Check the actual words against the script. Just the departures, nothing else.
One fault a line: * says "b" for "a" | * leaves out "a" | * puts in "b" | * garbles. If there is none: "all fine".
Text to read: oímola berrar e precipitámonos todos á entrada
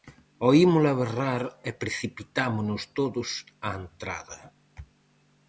all fine